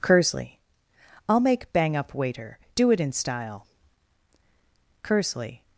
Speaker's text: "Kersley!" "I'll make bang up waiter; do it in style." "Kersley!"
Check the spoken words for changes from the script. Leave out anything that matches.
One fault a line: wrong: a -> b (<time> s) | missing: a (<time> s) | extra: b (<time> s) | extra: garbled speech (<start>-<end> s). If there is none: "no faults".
no faults